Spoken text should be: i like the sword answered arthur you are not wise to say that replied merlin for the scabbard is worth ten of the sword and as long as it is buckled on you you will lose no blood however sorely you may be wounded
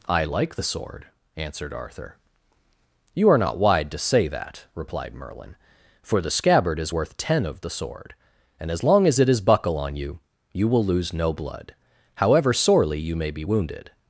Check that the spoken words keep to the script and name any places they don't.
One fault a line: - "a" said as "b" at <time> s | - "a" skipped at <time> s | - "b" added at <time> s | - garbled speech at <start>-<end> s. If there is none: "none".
- "wise" said as "wide" at 3.6 s
- "buckled" said as "buckle" at 9.4 s